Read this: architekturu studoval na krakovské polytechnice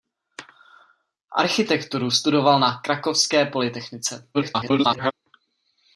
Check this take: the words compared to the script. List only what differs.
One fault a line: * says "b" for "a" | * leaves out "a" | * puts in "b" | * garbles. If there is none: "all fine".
* garbles